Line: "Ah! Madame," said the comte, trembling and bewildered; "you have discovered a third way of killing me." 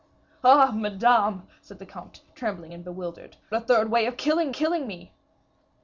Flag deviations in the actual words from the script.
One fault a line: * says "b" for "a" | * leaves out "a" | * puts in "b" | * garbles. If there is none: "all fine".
* leaves out "you have discovered"
* puts in "killing"